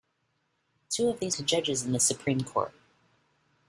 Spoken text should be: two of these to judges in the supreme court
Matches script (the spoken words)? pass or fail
pass